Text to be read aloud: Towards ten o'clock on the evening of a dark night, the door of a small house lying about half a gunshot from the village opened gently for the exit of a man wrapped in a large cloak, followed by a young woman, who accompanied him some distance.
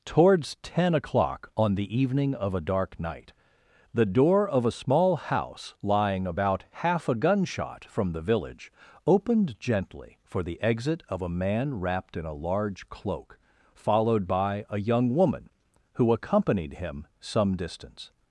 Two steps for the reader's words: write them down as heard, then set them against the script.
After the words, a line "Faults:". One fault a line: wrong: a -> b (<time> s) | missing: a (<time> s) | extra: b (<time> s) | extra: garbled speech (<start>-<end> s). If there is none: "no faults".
Towards ten o'clock on the evening of a dark night, the door of a small house lying about half a gunshot from the village opened gently for the exit of a man wrapped in a large cloak, followed by a young woman, who accompanied him some distance.
Faults:
no faults